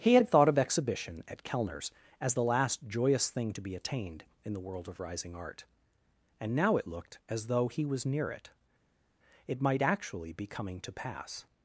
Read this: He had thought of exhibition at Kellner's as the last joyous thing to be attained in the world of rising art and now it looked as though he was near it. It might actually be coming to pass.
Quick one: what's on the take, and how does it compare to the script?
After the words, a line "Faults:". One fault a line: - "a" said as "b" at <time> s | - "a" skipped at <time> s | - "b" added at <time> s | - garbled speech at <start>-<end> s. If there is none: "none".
He had thought of exhibition at Kellner's as the last joyous thing to be attained in the world of rising art and now it looked as though he was near it. It might actually be coming to pass.
Faults:
none